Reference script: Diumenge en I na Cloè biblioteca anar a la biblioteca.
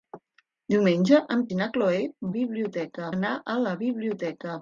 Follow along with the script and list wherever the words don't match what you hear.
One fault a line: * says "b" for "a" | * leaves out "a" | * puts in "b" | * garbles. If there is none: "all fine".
all fine